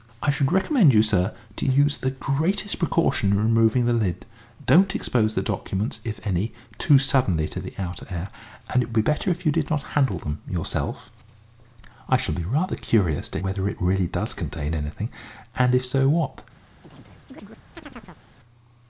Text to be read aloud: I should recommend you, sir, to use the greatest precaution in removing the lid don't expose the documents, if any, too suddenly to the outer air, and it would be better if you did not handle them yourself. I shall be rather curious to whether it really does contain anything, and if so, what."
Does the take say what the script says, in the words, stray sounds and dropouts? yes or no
no